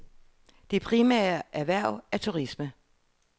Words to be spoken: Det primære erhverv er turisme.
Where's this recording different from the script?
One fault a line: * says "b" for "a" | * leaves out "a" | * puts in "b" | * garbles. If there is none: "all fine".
all fine